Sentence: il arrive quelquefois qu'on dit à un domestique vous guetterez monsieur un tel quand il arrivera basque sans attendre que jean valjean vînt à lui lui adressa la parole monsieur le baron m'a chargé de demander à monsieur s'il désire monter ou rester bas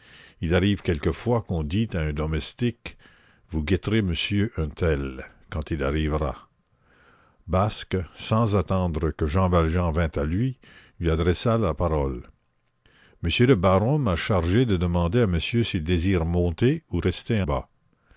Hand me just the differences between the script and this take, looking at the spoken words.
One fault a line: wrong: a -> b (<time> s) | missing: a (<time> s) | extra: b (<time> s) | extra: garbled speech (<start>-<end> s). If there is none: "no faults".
no faults